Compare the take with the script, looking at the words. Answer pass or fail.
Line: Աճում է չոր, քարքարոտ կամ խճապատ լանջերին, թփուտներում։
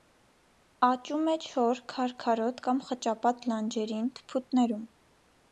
pass